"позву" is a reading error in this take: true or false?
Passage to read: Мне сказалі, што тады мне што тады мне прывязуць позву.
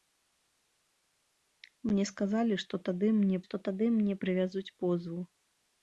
false